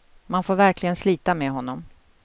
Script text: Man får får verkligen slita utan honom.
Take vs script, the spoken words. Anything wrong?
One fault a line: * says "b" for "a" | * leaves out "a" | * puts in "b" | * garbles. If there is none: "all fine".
* leaves out "får"
* says "med" for "utan"